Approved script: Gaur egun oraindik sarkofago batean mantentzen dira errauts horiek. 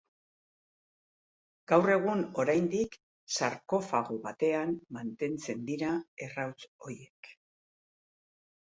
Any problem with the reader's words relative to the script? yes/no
no